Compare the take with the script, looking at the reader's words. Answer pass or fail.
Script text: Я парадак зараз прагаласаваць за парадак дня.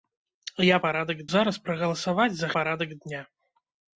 pass